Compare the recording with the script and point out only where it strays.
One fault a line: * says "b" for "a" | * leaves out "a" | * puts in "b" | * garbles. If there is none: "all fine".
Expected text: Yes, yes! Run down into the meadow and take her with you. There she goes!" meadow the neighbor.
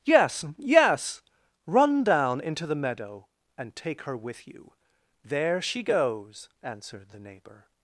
* says "answered" for "meadow"